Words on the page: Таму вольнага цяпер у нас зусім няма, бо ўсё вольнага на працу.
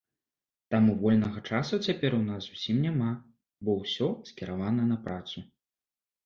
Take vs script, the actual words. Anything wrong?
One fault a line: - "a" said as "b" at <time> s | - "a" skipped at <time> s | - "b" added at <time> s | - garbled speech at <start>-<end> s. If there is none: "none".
- "часу" added at 1.5 s
- "вольнага" said as "скіравана" at 4.3 s